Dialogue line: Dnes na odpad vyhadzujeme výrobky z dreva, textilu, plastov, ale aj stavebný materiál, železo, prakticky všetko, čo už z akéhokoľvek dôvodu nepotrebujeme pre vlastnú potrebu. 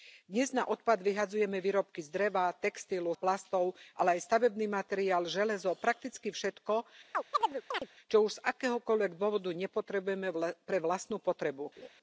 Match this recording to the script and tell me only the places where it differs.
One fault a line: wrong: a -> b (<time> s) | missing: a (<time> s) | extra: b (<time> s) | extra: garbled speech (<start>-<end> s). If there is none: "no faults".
no faults